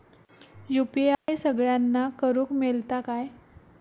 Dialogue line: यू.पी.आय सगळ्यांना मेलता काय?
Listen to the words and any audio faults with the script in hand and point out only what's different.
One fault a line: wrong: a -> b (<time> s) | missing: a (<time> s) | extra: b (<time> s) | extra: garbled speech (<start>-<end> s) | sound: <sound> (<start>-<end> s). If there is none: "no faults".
sound: dropout (1.1-1.3 s)
extra: करुक (2.2 s)